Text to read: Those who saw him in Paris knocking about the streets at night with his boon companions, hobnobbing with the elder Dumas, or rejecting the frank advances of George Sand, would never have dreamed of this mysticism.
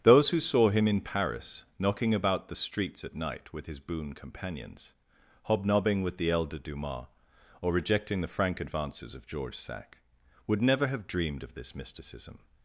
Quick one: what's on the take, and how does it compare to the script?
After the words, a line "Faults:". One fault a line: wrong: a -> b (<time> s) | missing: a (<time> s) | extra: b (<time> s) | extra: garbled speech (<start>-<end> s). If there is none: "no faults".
Those who saw him in Paris knocking about the streets at night with his boon companions, hobnobbing with the elder Dumas, or rejecting the frank advances of George Sack, would never have dreamed of this mysticism.
Faults:
wrong: Sand -> Sack (9.6 s)